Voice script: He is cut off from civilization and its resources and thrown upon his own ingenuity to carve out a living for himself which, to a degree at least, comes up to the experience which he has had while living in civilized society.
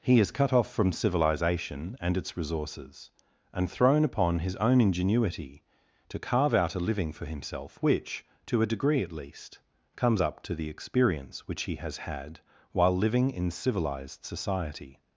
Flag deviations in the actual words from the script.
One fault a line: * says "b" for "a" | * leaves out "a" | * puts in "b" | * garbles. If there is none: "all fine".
all fine